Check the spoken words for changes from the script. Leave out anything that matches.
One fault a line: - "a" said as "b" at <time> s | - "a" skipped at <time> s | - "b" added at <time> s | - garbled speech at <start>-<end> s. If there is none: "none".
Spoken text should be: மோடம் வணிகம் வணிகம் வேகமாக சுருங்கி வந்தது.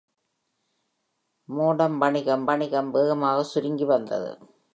none